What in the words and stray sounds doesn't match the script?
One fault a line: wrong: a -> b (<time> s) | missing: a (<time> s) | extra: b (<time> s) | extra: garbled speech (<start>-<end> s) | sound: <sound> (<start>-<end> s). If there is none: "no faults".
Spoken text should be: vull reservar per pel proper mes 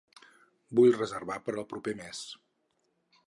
wrong: pel -> al (1.6 s)